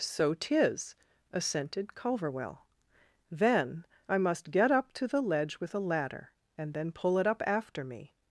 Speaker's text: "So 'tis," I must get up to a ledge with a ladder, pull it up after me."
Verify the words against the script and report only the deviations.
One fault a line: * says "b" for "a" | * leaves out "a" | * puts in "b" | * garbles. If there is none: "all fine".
* puts in "assented Culverwell Then"
* says "the" for "a"
* puts in "and then"